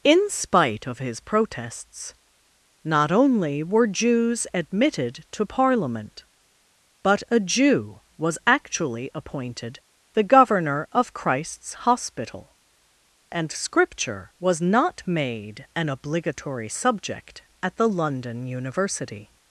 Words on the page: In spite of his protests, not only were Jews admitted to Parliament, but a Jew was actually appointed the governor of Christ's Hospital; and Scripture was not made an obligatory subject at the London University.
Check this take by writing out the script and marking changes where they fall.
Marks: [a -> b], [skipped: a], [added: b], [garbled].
In spite of his protests, not only were Jews admitted to Parliament, but a Jew was actually appointed the governor of Christ's Hospital; and Scripture was not made an obligatory subject at the London University.